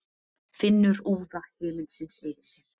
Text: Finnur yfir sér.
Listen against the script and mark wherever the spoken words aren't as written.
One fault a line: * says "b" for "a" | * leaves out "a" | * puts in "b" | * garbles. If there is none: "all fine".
* puts in "úða himinsins"